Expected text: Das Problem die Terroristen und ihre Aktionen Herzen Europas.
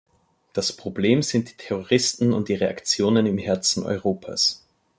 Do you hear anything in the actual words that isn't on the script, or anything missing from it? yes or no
yes